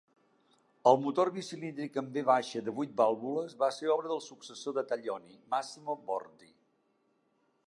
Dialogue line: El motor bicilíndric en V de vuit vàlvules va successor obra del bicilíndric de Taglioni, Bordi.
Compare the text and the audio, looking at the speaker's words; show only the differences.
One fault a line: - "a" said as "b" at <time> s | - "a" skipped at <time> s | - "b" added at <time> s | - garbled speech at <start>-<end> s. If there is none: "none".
- "successor" said as "ser" at 3.7 s
- "bicilíndric" said as "successor" at 4.3 s
- "Massimo" added at 5.5 s